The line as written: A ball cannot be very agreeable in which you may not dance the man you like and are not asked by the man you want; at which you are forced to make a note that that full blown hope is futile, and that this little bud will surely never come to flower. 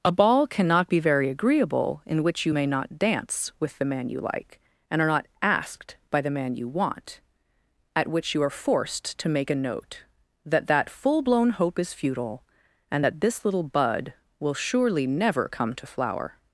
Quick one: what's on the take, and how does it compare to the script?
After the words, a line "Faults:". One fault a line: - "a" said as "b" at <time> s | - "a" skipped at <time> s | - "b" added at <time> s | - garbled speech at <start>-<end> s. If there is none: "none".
A ball cannot be very agreeable in which you may not dance with the man you like and are not asked by the man you want; at which you are forced to make a note that that full blown hope is futile, and that this little bud will surely never come to flower.
Faults:
- "with" added at 3.6 s